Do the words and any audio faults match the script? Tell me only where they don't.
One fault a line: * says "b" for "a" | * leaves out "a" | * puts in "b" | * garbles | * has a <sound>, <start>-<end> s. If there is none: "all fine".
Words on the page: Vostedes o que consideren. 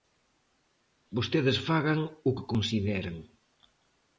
* puts in "fagan"